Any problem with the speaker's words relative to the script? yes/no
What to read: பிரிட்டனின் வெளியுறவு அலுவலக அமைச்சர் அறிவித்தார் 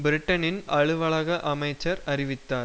yes